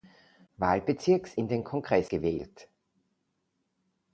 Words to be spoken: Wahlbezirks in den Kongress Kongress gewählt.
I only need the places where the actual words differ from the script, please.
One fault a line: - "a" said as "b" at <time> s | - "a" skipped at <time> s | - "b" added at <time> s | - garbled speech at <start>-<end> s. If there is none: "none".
- "Kongress" skipped at 2.1 s